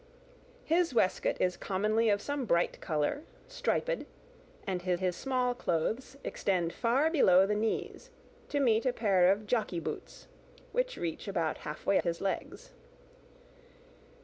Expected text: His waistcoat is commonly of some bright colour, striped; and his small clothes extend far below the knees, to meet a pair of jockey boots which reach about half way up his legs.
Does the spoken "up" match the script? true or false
false